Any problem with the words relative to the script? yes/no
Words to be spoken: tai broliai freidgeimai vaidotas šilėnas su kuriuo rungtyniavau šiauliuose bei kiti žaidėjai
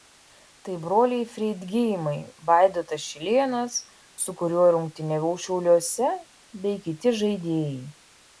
no